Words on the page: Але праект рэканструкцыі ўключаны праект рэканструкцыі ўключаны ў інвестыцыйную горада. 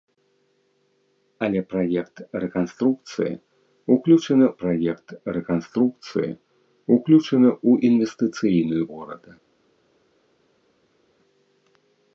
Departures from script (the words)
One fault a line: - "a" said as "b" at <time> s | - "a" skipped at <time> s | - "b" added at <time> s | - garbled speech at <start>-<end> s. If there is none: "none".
none